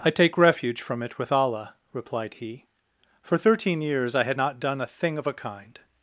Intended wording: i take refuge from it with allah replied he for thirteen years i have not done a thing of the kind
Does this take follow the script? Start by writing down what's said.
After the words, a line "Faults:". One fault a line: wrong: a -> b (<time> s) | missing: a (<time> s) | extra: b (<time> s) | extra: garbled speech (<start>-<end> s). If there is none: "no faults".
i take refuge from it with allah replied he for thirteen years i had not done a thing of a kind
Faults:
wrong: have -> had (4.2 s)
wrong: the -> a (5.3 s)